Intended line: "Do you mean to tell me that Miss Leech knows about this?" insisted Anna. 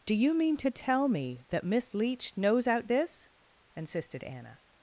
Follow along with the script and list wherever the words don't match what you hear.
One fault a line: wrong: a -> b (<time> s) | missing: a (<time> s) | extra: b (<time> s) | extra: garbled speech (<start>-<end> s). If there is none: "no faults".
wrong: about -> out (2.7 s)